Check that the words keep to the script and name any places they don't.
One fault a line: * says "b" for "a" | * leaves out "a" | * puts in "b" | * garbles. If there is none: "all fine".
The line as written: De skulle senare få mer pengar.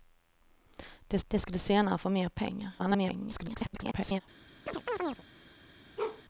* puts in "de"
* garbles